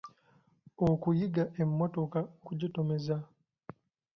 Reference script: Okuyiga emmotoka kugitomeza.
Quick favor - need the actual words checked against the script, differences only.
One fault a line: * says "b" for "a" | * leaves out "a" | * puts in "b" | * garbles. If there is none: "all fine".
all fine